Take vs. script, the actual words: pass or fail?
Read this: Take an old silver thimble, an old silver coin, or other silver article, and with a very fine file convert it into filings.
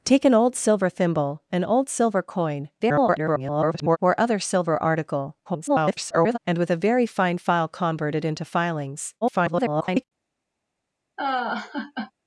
fail